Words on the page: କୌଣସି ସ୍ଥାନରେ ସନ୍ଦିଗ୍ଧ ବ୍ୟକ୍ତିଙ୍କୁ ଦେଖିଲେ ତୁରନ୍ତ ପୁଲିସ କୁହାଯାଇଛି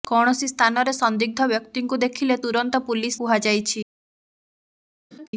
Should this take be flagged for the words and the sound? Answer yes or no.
yes